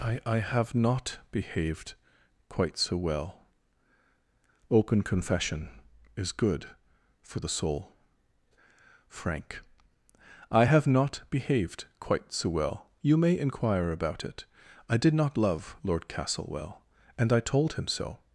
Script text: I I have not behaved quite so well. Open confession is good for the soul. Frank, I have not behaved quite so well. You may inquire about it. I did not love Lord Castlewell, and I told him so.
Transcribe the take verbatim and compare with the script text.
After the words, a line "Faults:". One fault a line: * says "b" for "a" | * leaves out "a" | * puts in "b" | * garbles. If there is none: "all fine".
I I have not behaved quite so well. Open confession is good for the soul. Frank, I have not behaved quite so well. You may inquire about it. I did not love Lord Castlewell, and I told him so.
Faults:
all fine